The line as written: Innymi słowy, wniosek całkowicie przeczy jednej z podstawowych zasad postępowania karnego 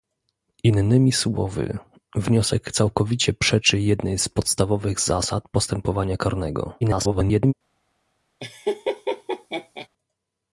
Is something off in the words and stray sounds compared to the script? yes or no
yes